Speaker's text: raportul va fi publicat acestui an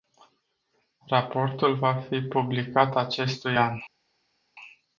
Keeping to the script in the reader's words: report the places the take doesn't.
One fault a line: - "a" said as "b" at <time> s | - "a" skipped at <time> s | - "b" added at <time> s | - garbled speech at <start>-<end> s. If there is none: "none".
none